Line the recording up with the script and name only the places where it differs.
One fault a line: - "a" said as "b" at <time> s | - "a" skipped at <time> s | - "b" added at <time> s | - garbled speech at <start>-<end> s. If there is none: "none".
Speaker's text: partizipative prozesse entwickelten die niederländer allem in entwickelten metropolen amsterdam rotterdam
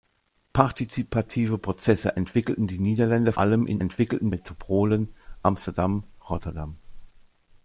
none